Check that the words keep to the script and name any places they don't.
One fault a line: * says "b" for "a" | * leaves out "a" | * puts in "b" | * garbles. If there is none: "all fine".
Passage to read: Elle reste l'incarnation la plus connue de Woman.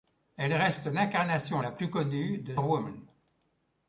all fine